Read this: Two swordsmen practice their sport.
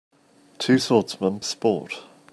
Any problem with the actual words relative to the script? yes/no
yes